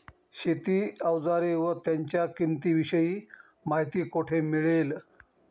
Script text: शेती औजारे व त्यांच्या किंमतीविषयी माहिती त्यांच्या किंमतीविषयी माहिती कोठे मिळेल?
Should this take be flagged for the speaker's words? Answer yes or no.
yes